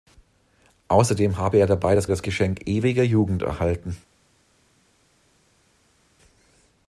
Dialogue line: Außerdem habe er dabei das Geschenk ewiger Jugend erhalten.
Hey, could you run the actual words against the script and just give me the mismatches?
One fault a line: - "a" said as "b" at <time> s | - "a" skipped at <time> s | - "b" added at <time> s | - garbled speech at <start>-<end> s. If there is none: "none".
- "das" added at 2.1 s